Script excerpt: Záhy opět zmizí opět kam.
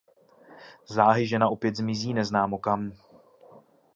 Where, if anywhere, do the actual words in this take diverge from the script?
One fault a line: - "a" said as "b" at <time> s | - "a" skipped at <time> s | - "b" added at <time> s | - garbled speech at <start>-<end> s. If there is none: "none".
- "žena" added at 1.3 s
- "opět" said as "neznámo" at 2.1 s